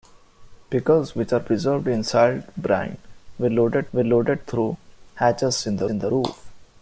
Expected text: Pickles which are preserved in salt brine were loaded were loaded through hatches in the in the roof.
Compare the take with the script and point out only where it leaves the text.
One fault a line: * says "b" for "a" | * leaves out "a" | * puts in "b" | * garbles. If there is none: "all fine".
all fine